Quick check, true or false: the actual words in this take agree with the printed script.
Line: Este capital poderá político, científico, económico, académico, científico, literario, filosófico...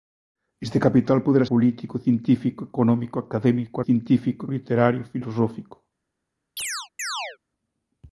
true